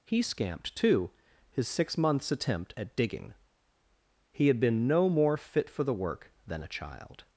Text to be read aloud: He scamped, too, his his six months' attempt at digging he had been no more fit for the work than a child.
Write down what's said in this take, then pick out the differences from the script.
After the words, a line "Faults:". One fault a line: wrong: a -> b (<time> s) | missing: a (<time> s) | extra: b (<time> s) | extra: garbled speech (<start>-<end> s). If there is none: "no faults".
He scamped, too, his six months' attempt at digging he had been no more fit for the work than a child.
Faults:
missing: his (1.7 s)